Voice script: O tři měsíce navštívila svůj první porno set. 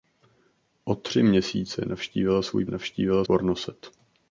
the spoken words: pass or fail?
fail